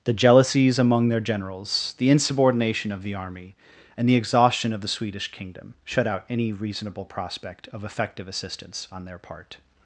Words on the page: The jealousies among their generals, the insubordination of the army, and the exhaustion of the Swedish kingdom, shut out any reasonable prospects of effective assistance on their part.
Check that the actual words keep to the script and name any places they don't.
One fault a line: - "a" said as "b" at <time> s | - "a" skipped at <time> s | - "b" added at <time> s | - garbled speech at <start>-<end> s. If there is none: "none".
- "prospects" said as "prospect" at 7.0 s